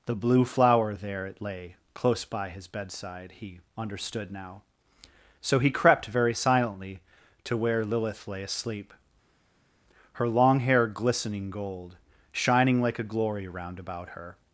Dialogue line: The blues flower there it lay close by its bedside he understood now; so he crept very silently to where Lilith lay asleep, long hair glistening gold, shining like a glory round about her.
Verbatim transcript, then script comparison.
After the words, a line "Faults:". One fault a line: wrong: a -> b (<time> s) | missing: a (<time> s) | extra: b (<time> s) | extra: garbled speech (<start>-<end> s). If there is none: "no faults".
The blue flower there it lay close by his bedside he understood now; so he crept very silently to where Lilith lay asleep, her long hair glistening gold, shining like a glory round about her.
Faults:
wrong: blues -> blue (0.1 s)
wrong: its -> his (2.5 s)
extra: her (10.1 s)